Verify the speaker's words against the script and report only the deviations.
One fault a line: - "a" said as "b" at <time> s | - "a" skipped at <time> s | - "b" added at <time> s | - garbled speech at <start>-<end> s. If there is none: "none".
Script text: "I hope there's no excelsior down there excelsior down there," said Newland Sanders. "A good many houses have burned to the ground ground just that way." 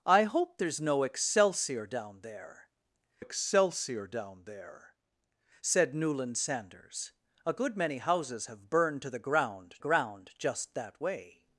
none